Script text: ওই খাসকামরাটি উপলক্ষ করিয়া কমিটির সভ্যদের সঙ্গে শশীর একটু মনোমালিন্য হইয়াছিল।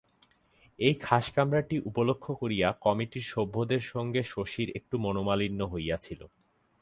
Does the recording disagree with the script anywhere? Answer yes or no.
yes